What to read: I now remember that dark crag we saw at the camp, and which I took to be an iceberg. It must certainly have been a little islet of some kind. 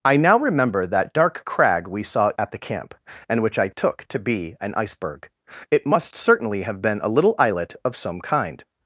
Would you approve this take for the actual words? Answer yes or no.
yes